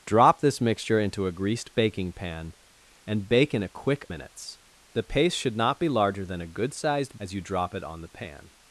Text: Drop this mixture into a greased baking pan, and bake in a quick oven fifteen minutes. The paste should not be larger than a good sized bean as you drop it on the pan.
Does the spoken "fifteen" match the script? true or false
false